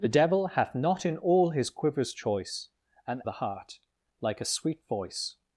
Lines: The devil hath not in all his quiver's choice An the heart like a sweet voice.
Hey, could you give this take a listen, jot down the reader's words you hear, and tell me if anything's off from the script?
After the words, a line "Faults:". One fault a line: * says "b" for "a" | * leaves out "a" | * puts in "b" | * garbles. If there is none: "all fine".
The devil hath not in all his quiver's choice An the heart like a sweet voice.
Faults:
all fine